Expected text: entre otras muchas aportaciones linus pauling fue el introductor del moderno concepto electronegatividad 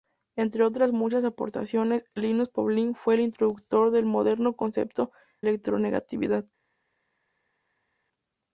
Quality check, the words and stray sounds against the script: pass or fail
pass